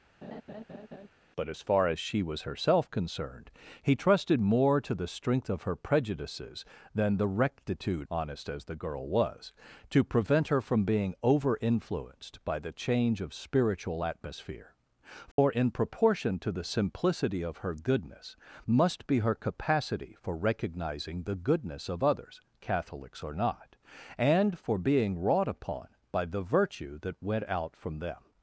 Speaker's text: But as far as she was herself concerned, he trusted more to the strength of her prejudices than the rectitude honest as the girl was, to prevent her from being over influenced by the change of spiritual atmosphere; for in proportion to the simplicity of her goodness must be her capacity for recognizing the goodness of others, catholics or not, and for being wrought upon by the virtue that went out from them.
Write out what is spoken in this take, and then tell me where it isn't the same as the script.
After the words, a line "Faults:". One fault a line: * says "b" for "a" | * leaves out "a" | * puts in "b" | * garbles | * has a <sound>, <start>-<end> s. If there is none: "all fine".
But as far as she was herself concerned, he trusted more to the strength of her prejudices than the rectitude honest as the girl was, to prevent her from being over influenced by the change of spiritual atmosphere; for in proportion to the simplicity of her goodness must be her capacity for recognizing the goodness of others, catholics or not, and for being wrought upon by the virtue that went out from them.
Faults:
* has a laugh, 0.2-1.1 s
* has a dropout, 15.3-15.4 s